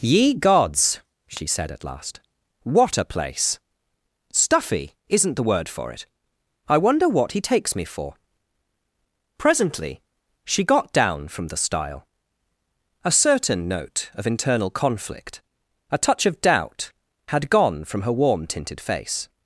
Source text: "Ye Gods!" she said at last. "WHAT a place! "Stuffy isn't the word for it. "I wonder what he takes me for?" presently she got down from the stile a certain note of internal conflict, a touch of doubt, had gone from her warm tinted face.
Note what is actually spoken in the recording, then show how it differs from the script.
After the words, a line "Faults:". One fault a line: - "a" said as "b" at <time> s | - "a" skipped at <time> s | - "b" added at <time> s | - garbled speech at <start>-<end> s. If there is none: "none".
"Ye Gods!" she said at last. "WHAT a place! "Stuffy isn't the word for it. "I wonder what he takes me for?" presently she got down from the stile a certain note of internal conflict, a touch of doubt, had gone from her warm tinted face.
Faults:
none